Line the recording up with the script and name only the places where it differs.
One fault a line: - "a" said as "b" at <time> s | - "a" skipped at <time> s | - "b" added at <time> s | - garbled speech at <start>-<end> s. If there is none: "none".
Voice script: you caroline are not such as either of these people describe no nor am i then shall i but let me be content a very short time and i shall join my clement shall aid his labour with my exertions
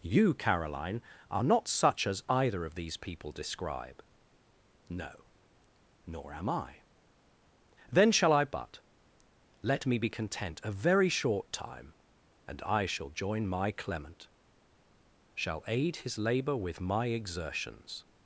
none